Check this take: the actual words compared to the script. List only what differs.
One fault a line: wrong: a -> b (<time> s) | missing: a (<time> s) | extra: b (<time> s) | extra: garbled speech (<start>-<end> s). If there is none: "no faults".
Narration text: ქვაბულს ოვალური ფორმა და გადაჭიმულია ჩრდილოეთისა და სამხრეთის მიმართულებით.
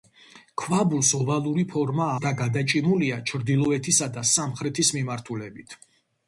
no faults